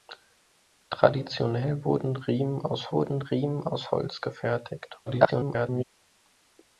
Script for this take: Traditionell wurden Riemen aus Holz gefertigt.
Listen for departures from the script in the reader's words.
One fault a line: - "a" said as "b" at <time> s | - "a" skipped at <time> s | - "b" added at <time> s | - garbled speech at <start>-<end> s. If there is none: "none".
- "wurden Riemen aus" added at 2.9 s
- garbled speech at 5.1-5.8 s